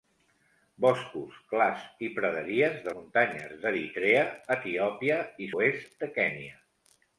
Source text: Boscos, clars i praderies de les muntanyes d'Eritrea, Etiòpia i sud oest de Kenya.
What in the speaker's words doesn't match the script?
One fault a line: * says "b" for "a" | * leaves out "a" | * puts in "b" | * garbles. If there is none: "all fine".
* leaves out "les"
* leaves out "sud"